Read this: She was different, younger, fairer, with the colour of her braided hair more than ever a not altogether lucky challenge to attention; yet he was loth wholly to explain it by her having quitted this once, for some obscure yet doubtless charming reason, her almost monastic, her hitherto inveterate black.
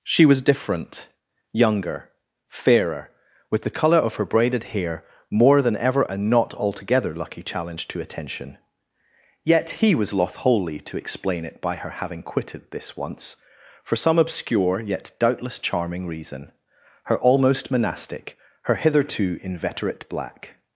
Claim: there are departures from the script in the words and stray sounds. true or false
false